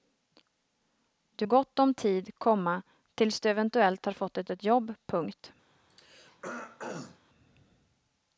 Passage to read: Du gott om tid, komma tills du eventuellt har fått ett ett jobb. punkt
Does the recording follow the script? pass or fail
pass